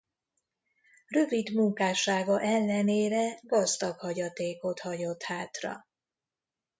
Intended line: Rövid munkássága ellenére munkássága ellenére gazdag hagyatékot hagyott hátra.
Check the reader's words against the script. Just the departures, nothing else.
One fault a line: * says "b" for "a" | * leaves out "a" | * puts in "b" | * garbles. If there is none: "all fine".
* leaves out "munkássága ellenére"